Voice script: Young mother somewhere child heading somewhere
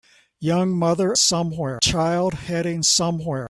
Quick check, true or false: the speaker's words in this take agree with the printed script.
true